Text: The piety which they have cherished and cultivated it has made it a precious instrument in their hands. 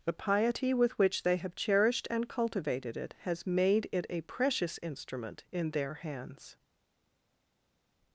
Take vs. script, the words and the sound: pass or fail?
fail